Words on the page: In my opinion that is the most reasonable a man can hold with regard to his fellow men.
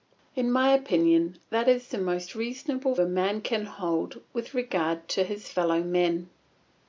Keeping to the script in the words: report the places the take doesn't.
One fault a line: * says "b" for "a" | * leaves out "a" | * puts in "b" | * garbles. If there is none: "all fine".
all fine